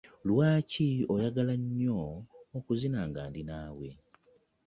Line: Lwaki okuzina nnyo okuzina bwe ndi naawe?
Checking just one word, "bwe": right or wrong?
wrong